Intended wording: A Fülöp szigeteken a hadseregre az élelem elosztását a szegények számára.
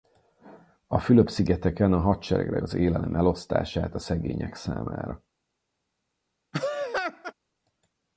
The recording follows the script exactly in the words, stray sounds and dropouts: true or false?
false